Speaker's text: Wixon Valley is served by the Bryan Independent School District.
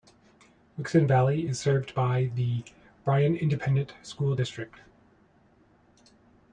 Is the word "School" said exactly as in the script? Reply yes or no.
yes